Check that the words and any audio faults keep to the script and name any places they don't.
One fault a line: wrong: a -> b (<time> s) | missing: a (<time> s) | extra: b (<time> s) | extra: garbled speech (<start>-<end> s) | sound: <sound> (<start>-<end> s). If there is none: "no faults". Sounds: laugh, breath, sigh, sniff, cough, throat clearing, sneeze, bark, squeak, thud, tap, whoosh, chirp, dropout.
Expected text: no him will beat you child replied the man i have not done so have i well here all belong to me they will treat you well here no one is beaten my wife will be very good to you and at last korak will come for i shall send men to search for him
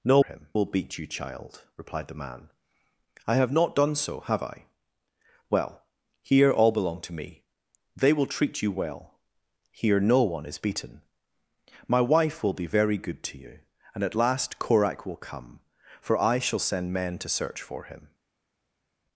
no faults